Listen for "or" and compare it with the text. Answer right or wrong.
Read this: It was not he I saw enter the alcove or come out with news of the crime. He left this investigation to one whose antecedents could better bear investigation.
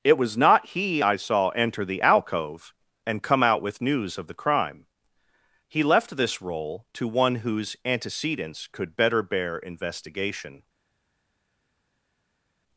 wrong